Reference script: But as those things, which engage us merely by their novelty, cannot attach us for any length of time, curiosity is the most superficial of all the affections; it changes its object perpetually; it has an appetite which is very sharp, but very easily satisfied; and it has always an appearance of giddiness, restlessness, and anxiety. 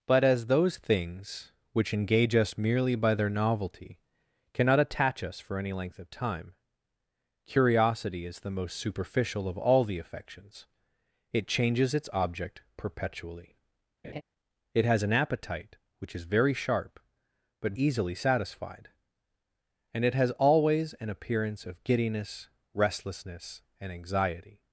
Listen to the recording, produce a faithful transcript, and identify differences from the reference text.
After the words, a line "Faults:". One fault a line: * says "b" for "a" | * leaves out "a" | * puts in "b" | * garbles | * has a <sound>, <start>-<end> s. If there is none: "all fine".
But as those things, which engage us merely by their novelty, cannot attach us for any length of time, curiosity is the most superficial of all the affections; it changes its object perpetually; it has an appetite which is very sharp, but easily satisfied; and it has always an appearance of giddiness, restlessness, and anxiety.
Faults:
* has a laugh, 14.0-14.2 s
* leaves out "very"